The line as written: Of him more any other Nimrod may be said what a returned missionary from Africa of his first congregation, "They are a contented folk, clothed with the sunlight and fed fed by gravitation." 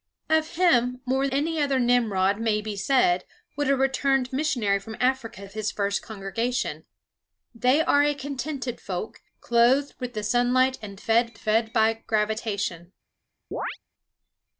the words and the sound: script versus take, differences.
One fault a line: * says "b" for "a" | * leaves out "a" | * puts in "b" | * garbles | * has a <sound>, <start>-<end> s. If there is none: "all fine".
* has a chirp, 13.5-13.8 s